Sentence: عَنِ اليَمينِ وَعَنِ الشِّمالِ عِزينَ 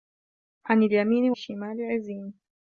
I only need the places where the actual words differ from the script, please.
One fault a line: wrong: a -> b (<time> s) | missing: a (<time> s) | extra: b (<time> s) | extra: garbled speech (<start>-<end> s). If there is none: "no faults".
missing: وَعَنِ (1.3 s)